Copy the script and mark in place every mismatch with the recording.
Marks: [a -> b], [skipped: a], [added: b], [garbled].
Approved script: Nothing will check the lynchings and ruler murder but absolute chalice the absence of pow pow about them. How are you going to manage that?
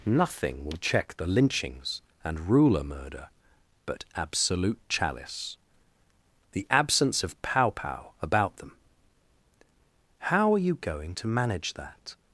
Nothing will check the lynchings and ruler murder but absolute chalice the absence of pow pow about them. How are you going to manage that?